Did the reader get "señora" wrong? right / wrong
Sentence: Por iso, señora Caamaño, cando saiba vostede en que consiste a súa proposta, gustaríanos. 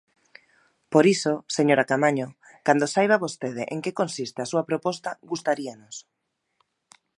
right